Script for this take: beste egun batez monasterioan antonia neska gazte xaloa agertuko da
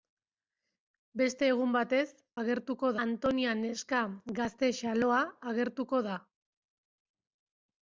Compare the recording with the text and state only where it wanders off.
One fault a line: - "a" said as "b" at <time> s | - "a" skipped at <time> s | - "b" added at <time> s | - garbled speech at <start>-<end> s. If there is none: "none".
- "monasterioan" said as "agertuko" at 2.4 s